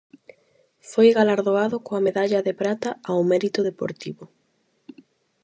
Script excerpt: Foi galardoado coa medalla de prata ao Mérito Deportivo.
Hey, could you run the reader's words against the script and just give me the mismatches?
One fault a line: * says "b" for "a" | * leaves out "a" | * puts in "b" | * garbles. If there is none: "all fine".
all fine